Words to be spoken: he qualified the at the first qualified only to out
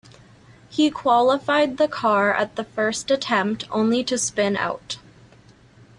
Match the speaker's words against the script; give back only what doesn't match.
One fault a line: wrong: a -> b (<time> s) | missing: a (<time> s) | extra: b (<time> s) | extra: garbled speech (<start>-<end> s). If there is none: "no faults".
extra: car (1.9 s)
wrong: qualified -> attempt (3.1 s)
extra: spin (4.2 s)